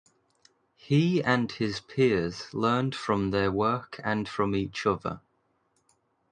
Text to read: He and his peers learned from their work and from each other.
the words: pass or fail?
pass